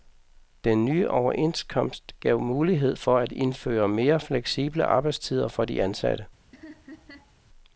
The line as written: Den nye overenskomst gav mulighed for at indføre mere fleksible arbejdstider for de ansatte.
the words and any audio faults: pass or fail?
fail